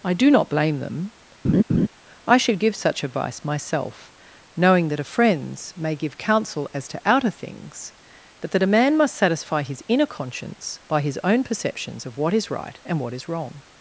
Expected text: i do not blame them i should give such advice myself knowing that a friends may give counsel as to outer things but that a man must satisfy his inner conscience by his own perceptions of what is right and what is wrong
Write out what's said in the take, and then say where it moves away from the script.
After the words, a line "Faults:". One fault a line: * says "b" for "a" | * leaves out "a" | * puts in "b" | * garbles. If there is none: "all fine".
i do not blame them i should give such advice myself knowing that a friends may give counsel as to outer things but that a man must satisfy his inner conscience by his own perceptions of what is right and what is wrong
Faults:
all fine